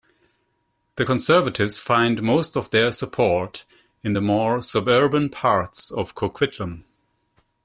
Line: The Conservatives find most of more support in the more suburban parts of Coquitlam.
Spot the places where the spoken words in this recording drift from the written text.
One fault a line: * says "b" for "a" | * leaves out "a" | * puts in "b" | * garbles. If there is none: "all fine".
* says "their" for "more"